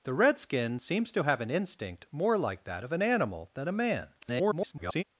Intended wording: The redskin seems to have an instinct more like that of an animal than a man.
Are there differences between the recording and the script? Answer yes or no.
yes